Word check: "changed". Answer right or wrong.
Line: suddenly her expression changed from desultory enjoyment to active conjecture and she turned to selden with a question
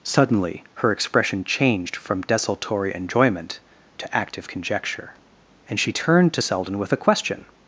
right